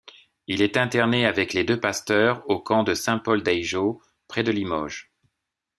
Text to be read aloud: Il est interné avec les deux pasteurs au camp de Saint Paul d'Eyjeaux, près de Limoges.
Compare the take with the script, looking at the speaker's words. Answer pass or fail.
pass